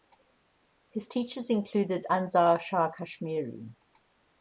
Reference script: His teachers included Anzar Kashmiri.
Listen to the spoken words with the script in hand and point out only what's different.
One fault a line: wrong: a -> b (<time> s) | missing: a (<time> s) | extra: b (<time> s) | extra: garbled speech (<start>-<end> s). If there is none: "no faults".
extra: Shah (2.6 s)